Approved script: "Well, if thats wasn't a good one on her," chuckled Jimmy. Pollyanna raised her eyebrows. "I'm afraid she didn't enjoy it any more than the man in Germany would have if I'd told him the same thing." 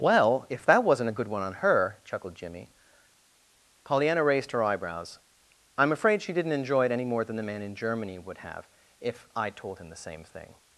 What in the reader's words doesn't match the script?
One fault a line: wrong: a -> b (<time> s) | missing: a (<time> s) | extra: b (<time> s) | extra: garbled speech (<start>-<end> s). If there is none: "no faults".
wrong: thats -> that (0.6 s)